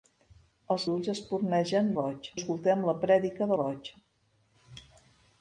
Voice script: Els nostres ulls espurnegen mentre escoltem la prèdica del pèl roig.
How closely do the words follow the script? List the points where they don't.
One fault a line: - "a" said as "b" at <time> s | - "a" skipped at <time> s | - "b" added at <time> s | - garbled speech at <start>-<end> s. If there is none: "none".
- "nostres" skipped at 0.8 s
- "mentre" said as "roig" at 2.0 s
- "del pèl" skipped at 3.5 s